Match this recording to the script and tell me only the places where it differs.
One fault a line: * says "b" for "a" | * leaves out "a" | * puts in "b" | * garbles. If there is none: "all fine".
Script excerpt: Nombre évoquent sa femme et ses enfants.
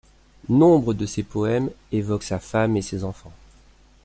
* puts in "de ses poèmes"